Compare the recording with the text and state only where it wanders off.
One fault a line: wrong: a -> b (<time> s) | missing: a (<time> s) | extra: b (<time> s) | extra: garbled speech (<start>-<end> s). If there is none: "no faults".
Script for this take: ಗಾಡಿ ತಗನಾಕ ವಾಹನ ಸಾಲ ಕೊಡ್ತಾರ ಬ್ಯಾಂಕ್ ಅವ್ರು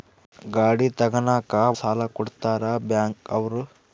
missing: ವಾಹನ (1.5 s)